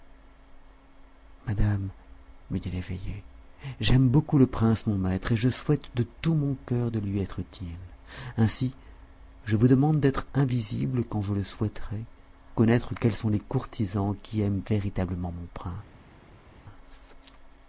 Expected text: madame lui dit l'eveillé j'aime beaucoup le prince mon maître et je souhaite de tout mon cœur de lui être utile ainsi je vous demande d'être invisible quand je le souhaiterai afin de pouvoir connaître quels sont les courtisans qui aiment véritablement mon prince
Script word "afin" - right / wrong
wrong